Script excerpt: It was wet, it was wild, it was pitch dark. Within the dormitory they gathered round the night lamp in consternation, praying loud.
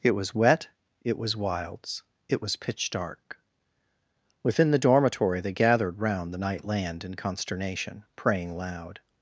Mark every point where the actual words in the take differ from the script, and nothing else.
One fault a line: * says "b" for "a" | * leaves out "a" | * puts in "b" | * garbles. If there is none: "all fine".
* says "wilds" for "wild"
* says "land" for "lamp"